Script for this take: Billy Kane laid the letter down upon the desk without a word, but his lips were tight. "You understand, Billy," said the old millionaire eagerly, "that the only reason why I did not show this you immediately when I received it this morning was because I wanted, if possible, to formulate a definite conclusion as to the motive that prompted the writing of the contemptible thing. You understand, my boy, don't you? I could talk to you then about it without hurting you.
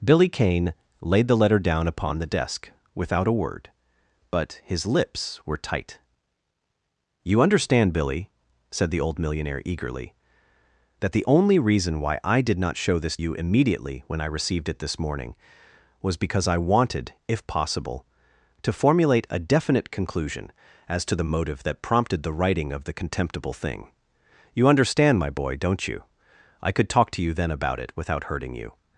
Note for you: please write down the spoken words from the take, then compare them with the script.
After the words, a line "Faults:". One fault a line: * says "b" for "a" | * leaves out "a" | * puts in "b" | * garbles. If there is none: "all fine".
Billy Kane laid the letter down upon the desk without a word, but his lips were tight. "You understand, Billy," said the old millionaire eagerly, "that the only reason why I did not show this you immediately when I received it this morning was because I wanted, if possible, to formulate a definite conclusion as to the motive that prompted the writing of the contemptible thing. You understand, my boy, don't you? I could talk to you then about it without hurting you.
Faults:
all fine